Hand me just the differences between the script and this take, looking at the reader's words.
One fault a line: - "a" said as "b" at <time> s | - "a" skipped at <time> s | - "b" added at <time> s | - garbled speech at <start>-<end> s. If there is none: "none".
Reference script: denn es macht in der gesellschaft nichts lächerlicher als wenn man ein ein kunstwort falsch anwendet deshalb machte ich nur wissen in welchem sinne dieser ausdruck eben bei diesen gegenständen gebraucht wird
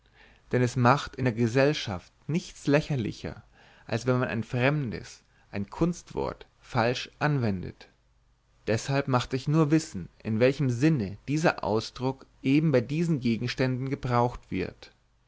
- "fremdes" added at 4.4 s